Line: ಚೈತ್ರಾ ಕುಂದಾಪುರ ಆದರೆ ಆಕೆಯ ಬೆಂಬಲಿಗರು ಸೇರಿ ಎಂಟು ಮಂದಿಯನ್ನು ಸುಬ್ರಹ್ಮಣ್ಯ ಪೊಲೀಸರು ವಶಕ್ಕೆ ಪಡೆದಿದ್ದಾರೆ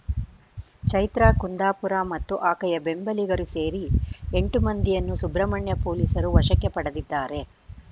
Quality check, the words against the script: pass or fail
fail